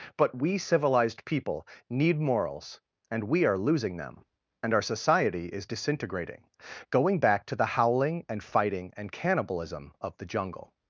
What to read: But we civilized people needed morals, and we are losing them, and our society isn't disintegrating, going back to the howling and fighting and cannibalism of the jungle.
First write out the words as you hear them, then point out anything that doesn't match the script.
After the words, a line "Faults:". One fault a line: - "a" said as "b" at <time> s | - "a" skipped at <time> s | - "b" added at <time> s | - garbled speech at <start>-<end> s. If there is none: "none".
But we civilized people need morals, and we are losing them, and our society is disintegrating, going back to the howling and fighting and cannibalism of the jungle.
Faults:
- "needed" said as "need" at 1.9 s
- "isn't" said as "is" at 5.5 s